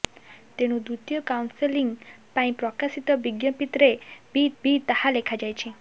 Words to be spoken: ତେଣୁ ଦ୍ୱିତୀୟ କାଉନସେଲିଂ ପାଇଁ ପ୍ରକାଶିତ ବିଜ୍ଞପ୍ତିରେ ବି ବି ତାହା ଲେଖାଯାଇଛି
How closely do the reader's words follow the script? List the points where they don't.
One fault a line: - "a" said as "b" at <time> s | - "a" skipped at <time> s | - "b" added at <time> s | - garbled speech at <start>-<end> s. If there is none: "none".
none